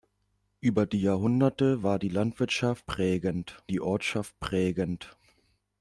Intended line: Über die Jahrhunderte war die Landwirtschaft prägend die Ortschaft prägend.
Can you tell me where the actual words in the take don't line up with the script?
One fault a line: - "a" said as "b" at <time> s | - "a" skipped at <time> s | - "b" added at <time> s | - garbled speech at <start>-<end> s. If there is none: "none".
none